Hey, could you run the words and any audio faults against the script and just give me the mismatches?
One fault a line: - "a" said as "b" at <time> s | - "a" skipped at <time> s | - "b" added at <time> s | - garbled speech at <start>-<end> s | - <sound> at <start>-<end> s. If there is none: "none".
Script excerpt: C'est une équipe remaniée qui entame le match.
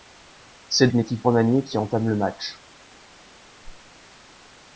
- whoosh at 3.6-3.9 s